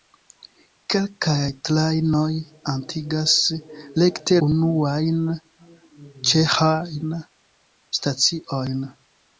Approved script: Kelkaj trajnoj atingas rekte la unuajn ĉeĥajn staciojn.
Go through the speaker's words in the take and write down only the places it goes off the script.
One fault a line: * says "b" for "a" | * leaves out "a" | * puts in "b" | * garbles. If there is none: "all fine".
* leaves out "la"